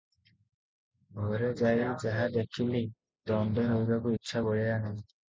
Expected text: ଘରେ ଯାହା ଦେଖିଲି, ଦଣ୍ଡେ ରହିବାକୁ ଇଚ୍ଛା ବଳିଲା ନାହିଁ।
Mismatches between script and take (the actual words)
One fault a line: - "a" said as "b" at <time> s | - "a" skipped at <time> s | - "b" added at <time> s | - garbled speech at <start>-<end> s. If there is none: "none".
- "ଯାଇ" added at 1.6 s